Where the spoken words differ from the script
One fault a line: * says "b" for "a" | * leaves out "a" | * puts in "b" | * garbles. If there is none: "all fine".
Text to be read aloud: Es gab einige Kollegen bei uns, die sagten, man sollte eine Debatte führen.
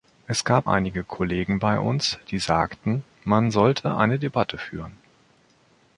all fine